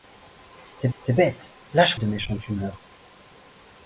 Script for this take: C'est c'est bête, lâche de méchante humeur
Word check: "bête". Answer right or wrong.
right